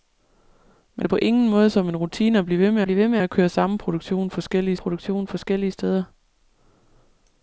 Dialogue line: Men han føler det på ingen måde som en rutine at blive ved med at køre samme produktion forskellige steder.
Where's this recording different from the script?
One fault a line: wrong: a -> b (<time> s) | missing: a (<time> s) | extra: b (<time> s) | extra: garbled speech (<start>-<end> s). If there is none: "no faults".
missing: han føler (1.1 s)
extra: blive ved med (2.8 s)
extra: produktion forskellige (4.8 s)